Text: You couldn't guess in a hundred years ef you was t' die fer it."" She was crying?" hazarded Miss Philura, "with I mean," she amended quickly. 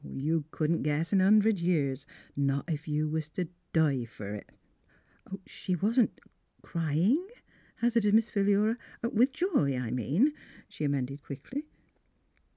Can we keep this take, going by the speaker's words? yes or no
no